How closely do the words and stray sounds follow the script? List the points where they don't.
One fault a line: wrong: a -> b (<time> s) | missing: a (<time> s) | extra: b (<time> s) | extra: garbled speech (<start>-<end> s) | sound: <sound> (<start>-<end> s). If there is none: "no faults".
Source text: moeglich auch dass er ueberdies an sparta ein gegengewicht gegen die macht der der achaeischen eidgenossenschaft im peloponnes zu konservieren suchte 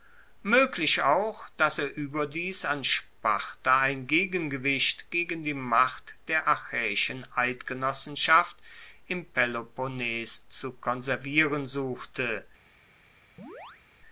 missing: der (6.5 s)
sound: chirp (13.4-13.8 s)